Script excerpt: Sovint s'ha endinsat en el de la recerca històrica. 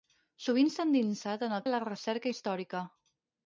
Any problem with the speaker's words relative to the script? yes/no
no